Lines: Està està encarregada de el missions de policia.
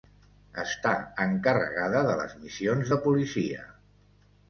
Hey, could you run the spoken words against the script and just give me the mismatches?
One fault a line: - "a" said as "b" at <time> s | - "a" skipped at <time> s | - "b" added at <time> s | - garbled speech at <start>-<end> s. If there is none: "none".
- "està" skipped at 0.9 s
- "el" said as "les" at 2.2 s